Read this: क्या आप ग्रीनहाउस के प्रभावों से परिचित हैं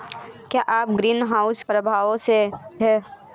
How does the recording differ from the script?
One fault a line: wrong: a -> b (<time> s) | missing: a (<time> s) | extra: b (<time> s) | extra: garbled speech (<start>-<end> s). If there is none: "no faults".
missing: के (1.6 s)
missing: परिचित (2.4 s)